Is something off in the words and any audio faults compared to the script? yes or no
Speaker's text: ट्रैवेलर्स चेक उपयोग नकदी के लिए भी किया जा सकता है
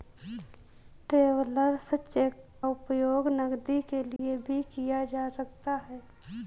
yes